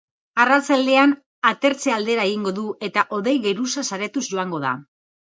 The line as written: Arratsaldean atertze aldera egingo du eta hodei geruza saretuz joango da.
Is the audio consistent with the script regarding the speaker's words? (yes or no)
yes